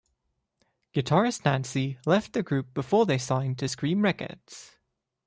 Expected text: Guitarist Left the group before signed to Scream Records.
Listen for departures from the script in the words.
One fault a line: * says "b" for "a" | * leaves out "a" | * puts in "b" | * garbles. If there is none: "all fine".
* puts in "Nancy"
* puts in "they"